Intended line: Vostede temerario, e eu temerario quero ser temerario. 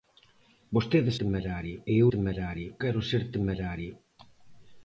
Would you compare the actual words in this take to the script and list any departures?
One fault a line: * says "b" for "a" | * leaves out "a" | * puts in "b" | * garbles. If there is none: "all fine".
all fine